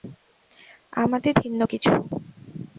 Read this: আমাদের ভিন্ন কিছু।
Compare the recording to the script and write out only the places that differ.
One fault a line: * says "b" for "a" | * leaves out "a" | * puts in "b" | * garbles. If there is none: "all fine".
all fine